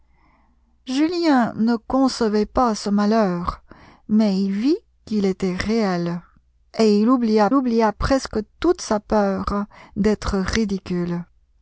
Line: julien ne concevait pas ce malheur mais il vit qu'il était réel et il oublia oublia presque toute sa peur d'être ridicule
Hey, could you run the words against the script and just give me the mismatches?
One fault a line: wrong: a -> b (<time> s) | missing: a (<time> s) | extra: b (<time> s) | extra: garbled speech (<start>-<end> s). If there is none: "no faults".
no faults